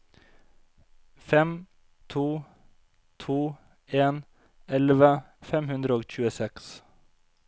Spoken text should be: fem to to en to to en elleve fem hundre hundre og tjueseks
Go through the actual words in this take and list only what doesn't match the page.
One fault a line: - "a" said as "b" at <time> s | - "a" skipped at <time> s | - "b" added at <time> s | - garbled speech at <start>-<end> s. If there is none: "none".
- "to to en" skipped at 4.2 s
- "hundre" skipped at 6.0 s